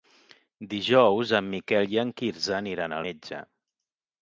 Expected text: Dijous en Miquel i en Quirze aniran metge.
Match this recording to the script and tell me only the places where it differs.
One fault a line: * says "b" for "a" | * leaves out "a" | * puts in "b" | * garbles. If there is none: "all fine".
all fine